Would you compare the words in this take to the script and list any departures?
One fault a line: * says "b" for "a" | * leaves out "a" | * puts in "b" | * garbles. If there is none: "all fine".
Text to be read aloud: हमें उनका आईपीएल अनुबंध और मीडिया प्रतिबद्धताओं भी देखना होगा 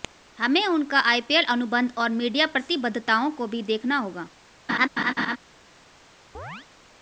* puts in "को"